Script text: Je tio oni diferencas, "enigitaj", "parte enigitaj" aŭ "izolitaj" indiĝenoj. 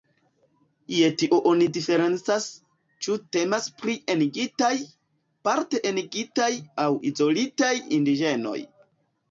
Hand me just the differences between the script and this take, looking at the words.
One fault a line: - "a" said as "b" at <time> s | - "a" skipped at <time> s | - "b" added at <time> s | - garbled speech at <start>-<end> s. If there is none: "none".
- "ĉu temas pri" added at 3.1 s